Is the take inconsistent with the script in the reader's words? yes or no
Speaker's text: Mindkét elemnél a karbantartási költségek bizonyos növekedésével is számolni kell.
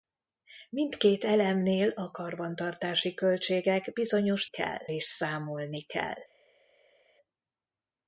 yes